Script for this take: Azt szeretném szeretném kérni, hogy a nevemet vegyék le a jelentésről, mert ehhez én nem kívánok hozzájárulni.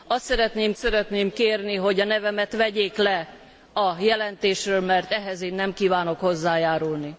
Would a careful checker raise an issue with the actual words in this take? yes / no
no